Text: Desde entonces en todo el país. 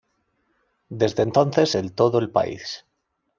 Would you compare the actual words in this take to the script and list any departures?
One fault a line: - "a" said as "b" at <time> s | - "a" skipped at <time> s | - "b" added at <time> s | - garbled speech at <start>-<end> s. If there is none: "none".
none